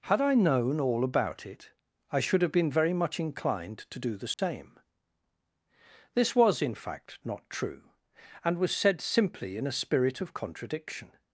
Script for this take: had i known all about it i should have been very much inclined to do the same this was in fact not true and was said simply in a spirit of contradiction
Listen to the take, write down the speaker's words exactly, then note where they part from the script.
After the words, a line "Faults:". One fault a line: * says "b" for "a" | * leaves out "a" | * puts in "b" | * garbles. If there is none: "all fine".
had i known all about it i should have been very much inclined to do the same this was in fact not true and was said simply in a spirit of contradiction
Faults:
all fine